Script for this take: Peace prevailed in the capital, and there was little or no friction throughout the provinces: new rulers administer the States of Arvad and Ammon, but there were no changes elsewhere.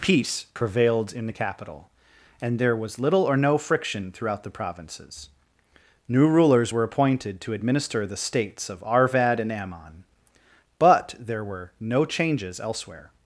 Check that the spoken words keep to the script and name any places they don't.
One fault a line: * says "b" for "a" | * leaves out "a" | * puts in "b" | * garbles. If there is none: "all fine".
* puts in "were appointed to"